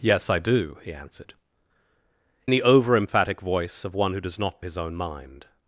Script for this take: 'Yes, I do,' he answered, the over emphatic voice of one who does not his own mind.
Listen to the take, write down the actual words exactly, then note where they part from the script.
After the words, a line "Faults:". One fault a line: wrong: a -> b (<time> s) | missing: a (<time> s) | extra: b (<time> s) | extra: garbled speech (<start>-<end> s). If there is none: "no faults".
'Yes, I do,' he answered, the over emphatic voice of one who does not his own mind.
Faults:
no faults